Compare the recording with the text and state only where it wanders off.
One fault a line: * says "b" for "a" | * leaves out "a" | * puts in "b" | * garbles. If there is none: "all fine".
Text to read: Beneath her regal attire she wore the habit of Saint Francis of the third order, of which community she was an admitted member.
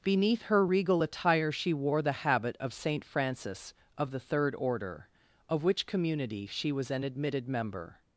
all fine